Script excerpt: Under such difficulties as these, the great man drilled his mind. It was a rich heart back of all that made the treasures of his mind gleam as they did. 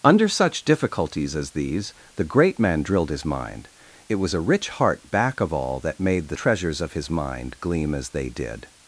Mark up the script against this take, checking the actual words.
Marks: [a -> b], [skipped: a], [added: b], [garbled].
Under such difficulties as these, the great man drilled his mind. It was a rich heart back of all that made the treasures of his mind gleam as they did.